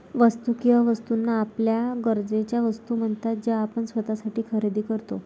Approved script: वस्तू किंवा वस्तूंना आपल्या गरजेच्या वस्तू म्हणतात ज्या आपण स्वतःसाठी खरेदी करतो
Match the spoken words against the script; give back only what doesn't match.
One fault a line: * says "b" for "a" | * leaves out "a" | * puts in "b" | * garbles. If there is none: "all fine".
all fine